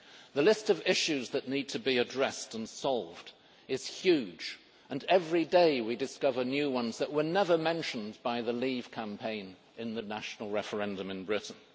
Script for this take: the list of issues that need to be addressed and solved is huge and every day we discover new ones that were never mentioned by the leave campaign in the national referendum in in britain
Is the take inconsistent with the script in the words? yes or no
yes